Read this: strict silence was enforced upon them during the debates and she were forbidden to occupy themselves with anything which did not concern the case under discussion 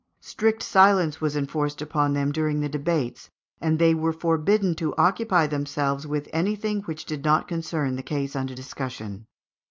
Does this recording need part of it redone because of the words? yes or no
yes